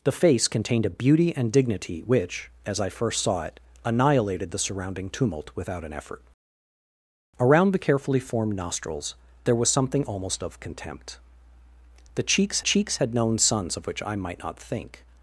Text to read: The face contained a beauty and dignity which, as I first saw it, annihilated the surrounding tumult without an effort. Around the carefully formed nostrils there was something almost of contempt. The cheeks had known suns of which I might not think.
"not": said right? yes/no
yes